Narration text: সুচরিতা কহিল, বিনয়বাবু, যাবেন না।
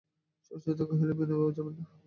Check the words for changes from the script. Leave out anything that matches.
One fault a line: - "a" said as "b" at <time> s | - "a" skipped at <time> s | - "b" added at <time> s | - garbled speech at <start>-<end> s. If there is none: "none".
none